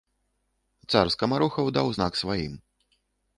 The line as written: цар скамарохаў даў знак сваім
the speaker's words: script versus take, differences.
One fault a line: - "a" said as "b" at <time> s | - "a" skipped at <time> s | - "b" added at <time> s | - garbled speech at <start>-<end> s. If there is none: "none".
none